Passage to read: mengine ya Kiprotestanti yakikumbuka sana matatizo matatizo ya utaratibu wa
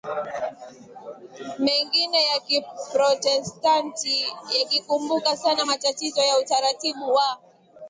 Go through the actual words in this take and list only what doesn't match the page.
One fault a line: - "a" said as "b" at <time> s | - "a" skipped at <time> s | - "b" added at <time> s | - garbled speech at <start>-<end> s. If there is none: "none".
- "matatizo" skipped at 6.2 s